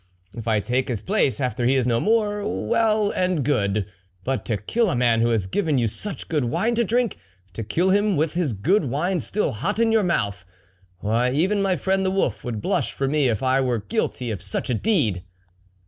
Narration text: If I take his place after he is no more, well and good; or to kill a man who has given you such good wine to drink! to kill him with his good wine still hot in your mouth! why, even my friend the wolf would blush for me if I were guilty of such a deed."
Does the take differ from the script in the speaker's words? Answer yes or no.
yes